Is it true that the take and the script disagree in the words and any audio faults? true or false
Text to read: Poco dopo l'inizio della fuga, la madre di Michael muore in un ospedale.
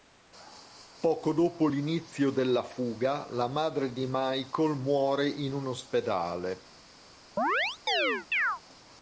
true